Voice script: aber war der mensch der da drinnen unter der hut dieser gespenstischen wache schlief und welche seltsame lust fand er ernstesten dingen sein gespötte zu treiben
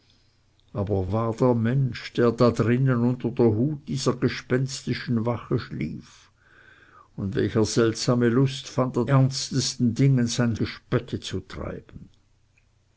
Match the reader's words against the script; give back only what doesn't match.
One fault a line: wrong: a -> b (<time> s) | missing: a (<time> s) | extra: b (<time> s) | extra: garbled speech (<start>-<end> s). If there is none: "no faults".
no faults